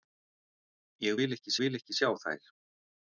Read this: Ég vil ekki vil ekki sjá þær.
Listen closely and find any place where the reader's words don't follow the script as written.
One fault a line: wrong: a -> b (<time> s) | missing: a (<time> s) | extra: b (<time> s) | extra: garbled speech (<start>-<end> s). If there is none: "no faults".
no faults